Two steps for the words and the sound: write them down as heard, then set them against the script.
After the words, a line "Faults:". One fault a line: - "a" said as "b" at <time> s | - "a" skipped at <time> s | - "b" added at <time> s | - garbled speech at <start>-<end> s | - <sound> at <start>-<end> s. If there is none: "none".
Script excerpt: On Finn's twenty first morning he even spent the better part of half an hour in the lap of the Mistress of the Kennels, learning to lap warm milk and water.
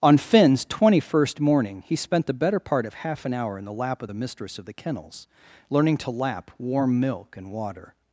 On Finn's twenty first morning he spent the better part of half an hour in the lap of the Mistress of the Kennels, learning to lap warm milk and water.
Faults:
- "even" skipped at 1.9 s